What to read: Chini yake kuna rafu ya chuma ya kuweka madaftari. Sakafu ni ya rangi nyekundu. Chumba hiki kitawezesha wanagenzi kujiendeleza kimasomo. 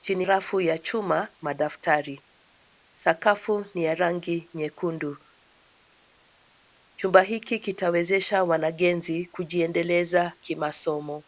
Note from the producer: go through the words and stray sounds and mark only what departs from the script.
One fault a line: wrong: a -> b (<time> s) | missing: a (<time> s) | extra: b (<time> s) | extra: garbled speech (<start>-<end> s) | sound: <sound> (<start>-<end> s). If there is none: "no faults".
missing: yake kuna (0.3 s)
missing: ya kuweka (1.3 s)